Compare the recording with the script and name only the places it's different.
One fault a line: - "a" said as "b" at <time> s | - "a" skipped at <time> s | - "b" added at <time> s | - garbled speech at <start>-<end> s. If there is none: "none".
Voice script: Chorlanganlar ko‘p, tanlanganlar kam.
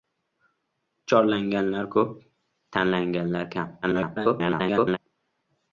- garbled speech at 3.8-5.0 s